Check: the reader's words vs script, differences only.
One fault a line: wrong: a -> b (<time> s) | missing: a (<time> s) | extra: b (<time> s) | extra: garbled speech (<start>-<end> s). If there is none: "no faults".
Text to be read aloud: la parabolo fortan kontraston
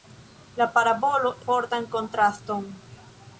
no faults